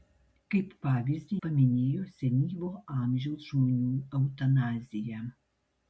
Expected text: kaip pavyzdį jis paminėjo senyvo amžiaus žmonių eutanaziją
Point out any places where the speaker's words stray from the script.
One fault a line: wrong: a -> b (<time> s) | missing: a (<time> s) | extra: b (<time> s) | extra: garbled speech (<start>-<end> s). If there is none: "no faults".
missing: jis (1.4 s)